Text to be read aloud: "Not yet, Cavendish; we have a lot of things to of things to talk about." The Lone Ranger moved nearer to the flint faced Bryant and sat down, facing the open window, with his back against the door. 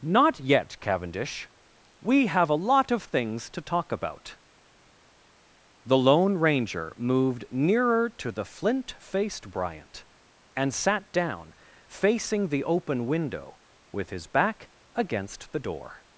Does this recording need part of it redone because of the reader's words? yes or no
yes